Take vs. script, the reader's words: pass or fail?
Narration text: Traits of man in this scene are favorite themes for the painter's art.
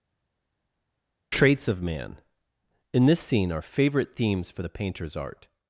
pass